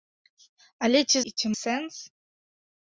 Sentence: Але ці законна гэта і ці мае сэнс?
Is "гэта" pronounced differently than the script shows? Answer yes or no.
yes